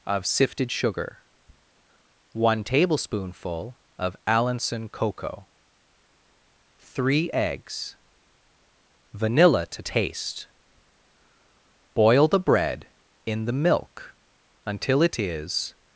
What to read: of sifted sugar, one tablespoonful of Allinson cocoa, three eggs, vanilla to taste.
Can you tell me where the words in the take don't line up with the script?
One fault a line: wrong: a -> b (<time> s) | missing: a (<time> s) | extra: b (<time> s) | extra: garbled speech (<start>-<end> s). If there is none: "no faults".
extra: Boil the bread in the milk until it is (11.9 s)